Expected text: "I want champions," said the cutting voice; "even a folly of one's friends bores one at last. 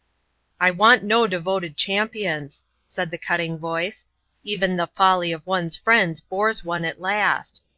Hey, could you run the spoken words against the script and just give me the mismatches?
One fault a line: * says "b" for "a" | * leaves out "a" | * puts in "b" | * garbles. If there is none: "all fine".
* puts in "no devoted"
* says "the" for "a"